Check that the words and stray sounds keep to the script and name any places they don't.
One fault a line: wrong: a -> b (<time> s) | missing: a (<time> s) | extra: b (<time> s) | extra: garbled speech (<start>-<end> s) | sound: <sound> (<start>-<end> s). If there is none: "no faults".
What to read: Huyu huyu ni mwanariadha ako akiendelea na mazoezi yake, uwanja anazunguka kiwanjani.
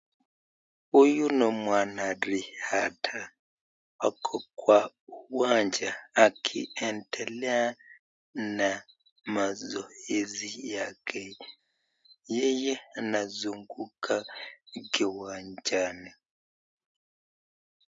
missing: huyu (1.2 s)
extra: kwa uwanja (4.5 s)
wrong: uwanja -> yeye (12.3 s)